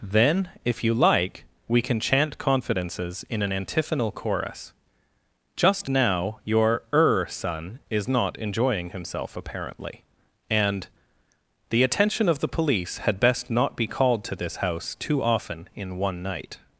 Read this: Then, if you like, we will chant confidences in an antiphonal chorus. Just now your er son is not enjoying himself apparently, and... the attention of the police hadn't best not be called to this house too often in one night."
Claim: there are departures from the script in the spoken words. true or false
true